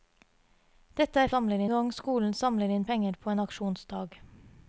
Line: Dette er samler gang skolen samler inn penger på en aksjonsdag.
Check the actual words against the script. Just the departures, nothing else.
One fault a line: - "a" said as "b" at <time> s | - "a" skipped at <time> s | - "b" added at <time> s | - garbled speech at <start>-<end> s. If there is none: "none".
none